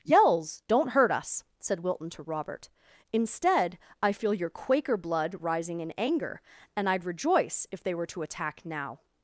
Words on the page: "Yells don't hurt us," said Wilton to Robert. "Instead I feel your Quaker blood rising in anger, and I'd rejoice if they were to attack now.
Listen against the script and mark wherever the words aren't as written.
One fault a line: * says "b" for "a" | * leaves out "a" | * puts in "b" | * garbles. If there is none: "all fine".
all fine